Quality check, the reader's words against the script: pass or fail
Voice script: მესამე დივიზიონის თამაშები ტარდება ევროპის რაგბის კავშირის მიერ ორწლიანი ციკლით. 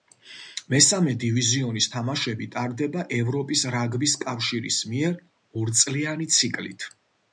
pass